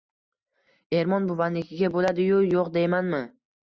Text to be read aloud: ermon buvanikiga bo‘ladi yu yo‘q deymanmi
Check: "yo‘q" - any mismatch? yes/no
no